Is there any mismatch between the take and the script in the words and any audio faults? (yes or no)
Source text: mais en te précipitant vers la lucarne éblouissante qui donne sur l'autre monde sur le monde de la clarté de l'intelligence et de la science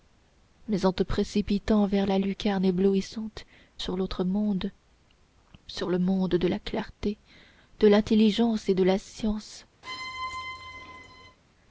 yes